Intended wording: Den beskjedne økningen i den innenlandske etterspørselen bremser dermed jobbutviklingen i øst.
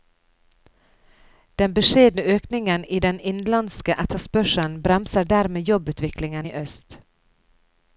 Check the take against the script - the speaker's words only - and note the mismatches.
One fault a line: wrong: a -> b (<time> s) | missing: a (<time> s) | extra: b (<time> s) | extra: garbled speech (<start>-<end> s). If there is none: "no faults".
no faults